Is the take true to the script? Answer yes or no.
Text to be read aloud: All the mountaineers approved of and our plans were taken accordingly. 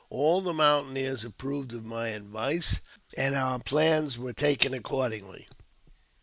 no